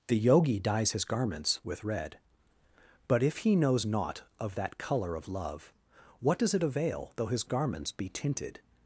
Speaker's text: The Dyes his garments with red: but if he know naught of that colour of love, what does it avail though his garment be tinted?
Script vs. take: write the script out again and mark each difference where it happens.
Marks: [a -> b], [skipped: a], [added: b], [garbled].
The [added: Yogi] Dyes his garments with red: but if he [know -> knows] naught of that colour of love, what does it avail though his [garment -> garments] be tinted?